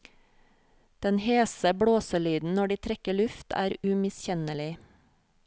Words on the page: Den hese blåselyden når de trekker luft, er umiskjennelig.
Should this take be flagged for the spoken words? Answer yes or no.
no